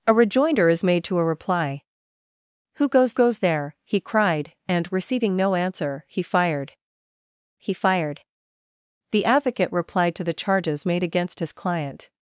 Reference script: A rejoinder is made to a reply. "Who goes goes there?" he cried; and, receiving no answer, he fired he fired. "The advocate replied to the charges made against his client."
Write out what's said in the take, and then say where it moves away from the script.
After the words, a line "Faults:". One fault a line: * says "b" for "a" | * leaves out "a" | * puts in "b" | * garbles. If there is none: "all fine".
A rejoinder is made to a reply. "Who goes goes there?" he cried; and, receiving no answer, he fired he fired. "The advocate replied to the charges made against his client."
Faults:
all fine